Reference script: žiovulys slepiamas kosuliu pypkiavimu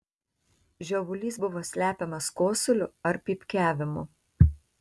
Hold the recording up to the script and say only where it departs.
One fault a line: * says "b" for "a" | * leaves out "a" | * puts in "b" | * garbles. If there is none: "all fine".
* puts in "buvo"
* puts in "ar"